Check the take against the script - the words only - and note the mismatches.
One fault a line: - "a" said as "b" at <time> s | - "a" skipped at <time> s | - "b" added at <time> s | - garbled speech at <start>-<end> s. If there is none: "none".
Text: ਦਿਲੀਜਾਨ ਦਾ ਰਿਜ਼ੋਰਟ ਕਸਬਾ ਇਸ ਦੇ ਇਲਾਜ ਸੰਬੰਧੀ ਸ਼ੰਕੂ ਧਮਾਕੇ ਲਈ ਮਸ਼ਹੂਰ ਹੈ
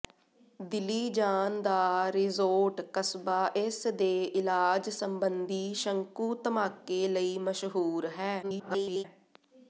- garbled speech at 8.4-9.0 s